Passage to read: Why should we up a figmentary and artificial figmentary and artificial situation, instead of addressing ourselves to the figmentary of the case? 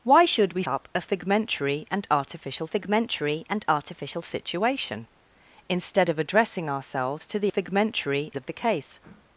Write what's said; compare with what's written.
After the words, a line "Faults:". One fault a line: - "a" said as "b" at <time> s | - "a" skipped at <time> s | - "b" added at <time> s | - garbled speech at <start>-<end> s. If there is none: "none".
Why should we up a figmentary and artificial figmentary and artificial situation, instead of addressing ourselves to the figmentary of the case?
Faults:
none